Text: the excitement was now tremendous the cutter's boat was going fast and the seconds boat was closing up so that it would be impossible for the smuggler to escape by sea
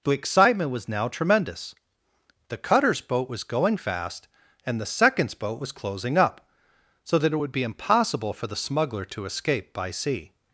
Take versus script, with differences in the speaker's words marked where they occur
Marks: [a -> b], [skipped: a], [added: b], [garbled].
the excitement was now tremendous the cutter's boat was going fast and the seconds boat was closing up so that it would be impossible for the smuggler to escape by sea